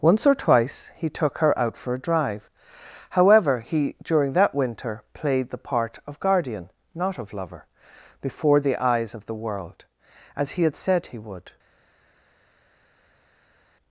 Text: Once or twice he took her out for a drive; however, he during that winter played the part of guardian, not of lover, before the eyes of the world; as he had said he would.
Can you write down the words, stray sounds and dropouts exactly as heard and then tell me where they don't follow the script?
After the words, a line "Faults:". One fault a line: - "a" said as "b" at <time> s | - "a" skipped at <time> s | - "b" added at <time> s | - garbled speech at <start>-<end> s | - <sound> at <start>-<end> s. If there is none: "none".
Once or twice he took her out for a drive; however, he during that winter played the part of guardian, not of lover, before the eyes of the world; as he had said he would.
Faults:
none